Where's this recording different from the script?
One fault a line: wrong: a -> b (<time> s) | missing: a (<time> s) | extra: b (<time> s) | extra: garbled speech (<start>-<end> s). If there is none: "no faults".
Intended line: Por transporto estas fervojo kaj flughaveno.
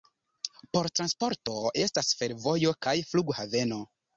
no faults